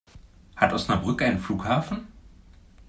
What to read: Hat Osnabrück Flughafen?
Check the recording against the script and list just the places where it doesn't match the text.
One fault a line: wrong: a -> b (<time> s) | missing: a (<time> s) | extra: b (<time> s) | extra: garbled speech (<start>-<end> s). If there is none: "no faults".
extra: einen (1.2 s)